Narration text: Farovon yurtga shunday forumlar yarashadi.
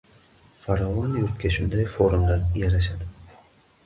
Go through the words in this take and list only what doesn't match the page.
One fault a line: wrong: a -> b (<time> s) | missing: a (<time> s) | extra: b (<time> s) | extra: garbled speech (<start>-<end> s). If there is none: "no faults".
no faults